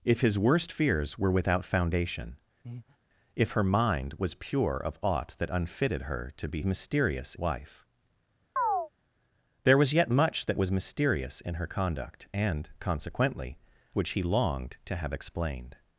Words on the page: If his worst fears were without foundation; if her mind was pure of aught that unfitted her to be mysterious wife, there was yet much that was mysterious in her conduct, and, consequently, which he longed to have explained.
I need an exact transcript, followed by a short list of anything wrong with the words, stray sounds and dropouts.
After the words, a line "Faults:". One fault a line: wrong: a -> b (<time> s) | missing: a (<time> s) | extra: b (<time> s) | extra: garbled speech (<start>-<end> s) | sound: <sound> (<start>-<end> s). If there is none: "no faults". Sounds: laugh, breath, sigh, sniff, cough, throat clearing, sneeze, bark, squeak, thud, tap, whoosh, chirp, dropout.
If his worst fears were without foundation; if her mind was pure of aught that unfitted her to be mysterious wife, there was yet much that was mysterious in her conduct, and, consequently, which he longed to have explained.
Faults:
sound: breath (2.6-3.0 s)
sound: chirp (8.6-8.9 s)